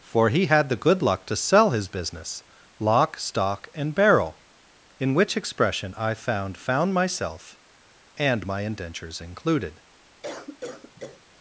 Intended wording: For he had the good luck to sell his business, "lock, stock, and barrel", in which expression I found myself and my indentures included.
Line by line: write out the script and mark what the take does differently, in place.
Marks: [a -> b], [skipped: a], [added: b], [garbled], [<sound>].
For he had the good luck to sell his business, "lock, stock, and barrel", in which expression I found [added: found] myself and my indentures included. [cough]